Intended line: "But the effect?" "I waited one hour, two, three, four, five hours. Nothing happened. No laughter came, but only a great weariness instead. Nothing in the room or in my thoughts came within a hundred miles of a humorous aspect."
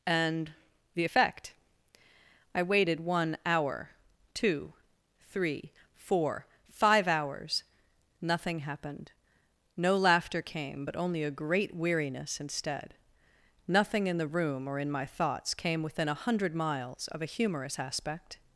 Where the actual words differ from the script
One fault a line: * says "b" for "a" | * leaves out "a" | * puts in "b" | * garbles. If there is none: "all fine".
* says "And" for "But"